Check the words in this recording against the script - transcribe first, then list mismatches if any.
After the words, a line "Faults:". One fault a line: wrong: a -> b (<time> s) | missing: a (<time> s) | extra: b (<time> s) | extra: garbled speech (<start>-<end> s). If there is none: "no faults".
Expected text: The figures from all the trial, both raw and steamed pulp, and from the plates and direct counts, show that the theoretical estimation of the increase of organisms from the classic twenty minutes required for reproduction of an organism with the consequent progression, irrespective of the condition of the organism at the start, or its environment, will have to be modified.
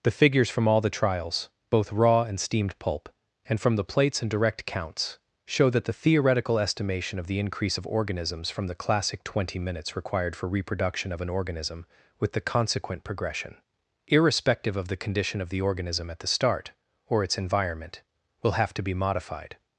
The figures from all the trials, both raw and steamed pulp, and from the plates and direct counts, show that the theoretical estimation of the increase of organisms from the classic twenty minutes required for reproduction of an organism with the consequent progression, irrespective of the condition of the organism at the start, or its environment, will have to be modified.
Faults:
wrong: trial -> trials (0.9 s)